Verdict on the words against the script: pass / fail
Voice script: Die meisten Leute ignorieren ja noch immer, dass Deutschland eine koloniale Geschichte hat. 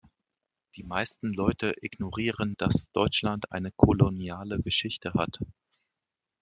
fail